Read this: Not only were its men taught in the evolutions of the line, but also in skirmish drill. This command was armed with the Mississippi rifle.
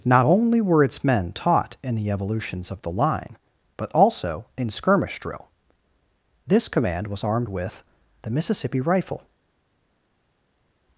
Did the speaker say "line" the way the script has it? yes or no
yes